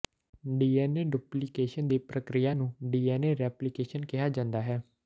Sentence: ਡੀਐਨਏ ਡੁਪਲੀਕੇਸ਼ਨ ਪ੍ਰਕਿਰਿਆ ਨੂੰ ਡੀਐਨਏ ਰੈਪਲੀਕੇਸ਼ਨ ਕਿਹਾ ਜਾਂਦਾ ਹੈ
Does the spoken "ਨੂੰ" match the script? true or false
true